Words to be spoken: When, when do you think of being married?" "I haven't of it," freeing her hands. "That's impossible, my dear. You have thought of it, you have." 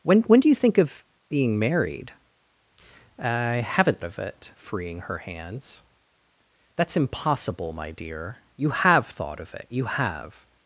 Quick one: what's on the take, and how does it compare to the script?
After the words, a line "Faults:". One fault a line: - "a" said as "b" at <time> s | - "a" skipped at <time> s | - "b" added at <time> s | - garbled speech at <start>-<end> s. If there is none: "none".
When, when do you think of being married?" "I haven't of it," freeing her hands. "That's impossible, my dear. You have thought of it, you have."
Faults:
none